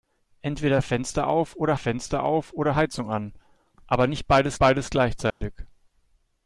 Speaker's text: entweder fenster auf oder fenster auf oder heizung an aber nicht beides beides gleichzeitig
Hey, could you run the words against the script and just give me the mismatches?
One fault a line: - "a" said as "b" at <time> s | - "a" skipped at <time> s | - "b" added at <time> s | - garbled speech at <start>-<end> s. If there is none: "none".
none